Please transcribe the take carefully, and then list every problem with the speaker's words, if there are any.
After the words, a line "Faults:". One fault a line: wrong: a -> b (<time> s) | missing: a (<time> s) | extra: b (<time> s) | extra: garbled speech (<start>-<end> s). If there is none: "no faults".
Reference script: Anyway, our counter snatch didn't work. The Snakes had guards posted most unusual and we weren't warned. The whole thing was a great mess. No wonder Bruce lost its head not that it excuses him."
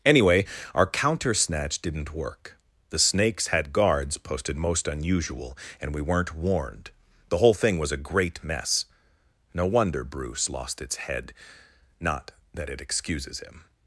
Anyway, our counter snatch didn't work. The Snakes had guards posted most unusual and we weren't warned. The whole thing was a great mess. No wonder Bruce lost its head not that it excuses him."
Faults:
no faults